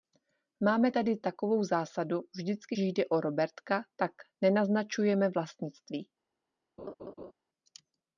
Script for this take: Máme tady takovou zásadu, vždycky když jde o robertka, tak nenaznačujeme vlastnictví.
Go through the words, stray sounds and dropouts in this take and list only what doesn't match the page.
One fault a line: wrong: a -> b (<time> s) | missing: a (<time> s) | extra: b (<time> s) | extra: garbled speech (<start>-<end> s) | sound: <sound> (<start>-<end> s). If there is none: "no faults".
missing: když (2.8 s)
sound: laugh (6.8-7.3 s)